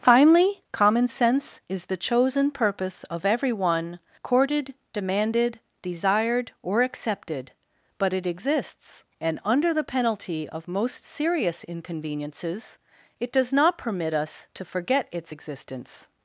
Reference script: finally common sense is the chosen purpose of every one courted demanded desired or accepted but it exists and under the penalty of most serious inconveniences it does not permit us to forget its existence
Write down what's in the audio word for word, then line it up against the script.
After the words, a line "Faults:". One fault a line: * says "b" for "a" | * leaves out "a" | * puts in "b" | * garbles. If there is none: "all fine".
finally common sense is the chosen purpose of every one courted demanded desired or accepted but it exists and under the penalty of most serious inconveniences it does not permit us to forget its existence
Faults:
all fine